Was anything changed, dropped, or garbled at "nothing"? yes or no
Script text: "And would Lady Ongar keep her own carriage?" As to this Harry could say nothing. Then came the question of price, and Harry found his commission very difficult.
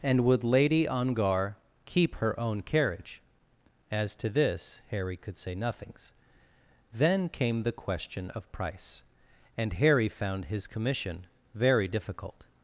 yes